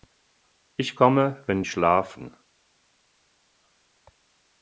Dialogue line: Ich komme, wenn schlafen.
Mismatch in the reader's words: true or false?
false